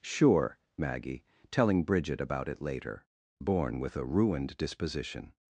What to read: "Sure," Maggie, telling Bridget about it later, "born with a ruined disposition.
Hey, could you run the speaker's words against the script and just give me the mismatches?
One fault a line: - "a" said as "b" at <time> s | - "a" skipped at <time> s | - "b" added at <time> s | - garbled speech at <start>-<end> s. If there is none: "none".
none